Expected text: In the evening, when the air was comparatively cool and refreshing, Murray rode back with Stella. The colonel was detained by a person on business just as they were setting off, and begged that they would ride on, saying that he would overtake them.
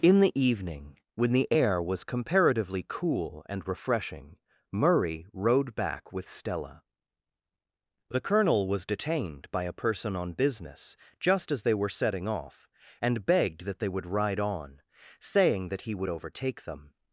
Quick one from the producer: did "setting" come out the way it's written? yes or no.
yes